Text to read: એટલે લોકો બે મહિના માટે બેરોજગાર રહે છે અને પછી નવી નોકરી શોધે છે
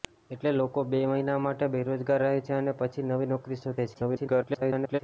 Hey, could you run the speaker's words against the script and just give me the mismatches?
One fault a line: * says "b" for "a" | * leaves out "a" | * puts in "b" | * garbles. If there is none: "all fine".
* garbles